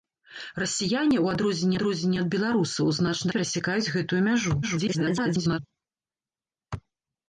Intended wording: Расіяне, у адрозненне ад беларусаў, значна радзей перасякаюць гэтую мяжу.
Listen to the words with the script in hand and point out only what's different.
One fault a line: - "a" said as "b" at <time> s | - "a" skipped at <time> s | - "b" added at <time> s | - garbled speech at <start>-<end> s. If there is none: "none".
- "адрозненне" added at 1.7 s
- "радзей" skipped at 3.3 s
- garbled speech at 4.6-5.6 s